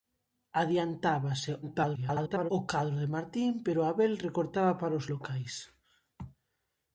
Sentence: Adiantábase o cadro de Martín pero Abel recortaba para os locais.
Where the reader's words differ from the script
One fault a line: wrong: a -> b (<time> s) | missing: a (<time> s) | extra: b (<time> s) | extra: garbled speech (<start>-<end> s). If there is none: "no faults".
extra: garbled speech (1.6-2.5 s)